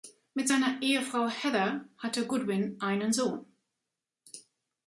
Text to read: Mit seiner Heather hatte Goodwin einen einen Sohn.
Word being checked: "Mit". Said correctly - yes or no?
yes